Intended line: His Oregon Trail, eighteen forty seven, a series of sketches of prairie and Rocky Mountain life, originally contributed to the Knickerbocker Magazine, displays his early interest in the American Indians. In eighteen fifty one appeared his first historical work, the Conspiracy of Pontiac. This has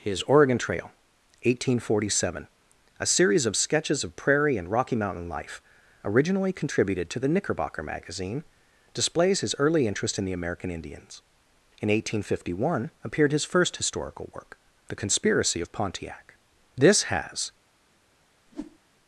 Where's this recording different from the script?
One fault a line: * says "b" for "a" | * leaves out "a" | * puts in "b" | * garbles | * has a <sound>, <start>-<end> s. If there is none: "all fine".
* has a whoosh, 18.5-18.8 s